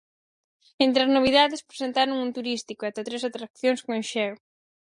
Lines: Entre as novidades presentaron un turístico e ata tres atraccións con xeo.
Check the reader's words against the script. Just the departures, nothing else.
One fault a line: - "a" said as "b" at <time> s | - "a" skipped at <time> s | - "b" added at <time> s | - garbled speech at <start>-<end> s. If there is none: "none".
none